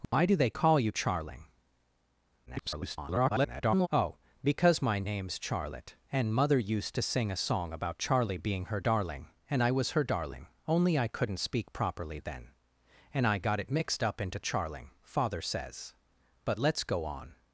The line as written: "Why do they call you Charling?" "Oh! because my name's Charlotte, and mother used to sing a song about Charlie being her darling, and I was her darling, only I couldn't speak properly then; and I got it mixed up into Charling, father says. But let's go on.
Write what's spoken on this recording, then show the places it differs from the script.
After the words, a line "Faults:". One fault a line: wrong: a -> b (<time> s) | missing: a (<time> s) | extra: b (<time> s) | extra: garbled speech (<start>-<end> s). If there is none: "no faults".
"Why do they call you Charling?" [garbled] "Oh! because my name's Charlotte, and mother used to sing a song about Charlie being her darling, and I was her darling, only I couldn't speak properly then; and I got it mixed up into Charling, father says. But let's go on.
Faults:
extra: garbled speech (2.5-3.9 s)